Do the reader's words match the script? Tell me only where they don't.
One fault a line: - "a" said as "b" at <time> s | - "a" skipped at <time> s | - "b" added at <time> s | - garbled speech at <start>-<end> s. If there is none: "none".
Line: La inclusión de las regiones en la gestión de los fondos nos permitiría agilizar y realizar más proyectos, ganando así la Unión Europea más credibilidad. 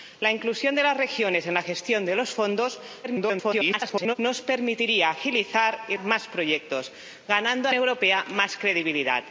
- garbled speech at 3.0-4.2 s
- "realizar" skipped at 6.0 s
- "así la Unión" skipped at 7.7 s